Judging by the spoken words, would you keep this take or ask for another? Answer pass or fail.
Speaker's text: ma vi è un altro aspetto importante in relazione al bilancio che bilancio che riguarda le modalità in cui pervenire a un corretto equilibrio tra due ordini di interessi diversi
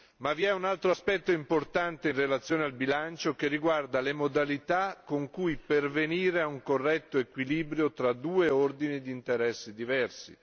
fail